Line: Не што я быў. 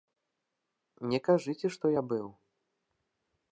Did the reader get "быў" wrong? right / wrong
right